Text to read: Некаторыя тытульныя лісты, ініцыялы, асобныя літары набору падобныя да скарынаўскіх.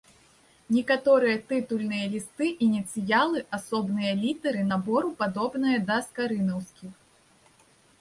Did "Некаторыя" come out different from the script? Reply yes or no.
no